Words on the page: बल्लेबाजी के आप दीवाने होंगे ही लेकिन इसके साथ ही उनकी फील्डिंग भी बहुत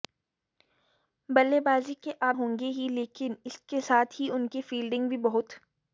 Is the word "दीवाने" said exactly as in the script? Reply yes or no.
no